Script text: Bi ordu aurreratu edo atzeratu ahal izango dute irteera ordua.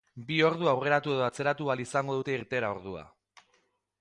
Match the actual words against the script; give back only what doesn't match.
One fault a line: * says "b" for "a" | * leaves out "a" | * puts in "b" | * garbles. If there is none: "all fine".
all fine